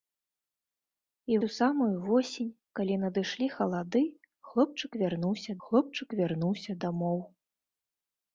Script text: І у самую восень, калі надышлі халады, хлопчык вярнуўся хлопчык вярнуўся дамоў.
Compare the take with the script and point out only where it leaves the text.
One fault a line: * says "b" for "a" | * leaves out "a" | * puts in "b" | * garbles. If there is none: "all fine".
all fine